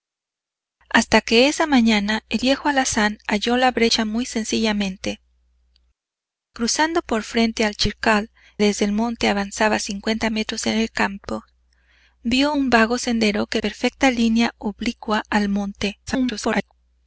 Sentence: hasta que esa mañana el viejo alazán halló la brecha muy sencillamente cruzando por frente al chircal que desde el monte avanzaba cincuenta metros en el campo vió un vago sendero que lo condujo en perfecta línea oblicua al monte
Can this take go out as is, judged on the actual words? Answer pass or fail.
fail